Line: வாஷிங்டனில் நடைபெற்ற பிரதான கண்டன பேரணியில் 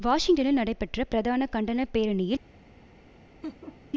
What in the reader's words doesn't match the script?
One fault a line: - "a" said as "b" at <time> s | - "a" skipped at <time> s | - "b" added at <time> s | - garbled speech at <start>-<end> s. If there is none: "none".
none